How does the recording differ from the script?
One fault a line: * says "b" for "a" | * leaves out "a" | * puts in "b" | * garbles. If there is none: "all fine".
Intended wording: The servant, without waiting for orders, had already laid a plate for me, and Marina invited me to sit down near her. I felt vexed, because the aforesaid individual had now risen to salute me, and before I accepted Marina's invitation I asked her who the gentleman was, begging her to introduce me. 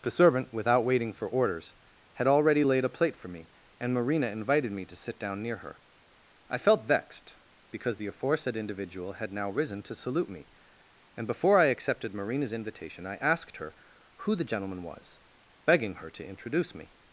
all fine